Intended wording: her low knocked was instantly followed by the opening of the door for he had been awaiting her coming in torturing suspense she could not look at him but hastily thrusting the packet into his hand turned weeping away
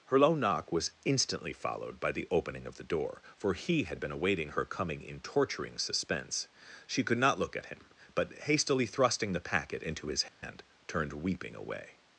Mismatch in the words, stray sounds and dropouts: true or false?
true